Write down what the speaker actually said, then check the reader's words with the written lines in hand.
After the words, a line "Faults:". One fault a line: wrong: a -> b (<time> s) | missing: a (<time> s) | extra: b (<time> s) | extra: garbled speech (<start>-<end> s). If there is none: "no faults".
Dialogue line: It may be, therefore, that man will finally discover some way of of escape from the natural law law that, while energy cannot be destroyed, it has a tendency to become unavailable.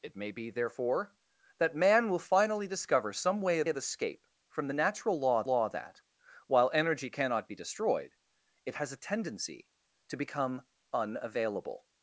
It may be, therefore, that man will finally discover some way of of escape from the natural law law that, while energy cannot be destroyed, it has a tendency to become unavailable.
Faults:
no faults